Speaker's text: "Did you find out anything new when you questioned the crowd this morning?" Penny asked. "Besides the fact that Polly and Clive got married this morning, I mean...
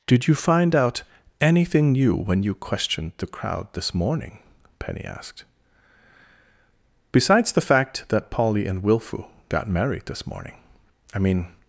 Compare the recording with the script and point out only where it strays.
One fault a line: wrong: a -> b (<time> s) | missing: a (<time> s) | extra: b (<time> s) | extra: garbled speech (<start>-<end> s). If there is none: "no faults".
wrong: Clive -> Wilfu (8.8 s)